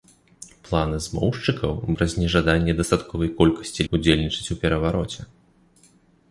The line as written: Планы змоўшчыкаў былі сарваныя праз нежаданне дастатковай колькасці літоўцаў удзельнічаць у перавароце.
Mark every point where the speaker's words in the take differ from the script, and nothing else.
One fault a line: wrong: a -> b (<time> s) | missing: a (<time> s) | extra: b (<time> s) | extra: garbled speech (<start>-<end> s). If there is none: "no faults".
missing: былі сарваныя (1.7 s)
missing: літоўцаў (3.8 s)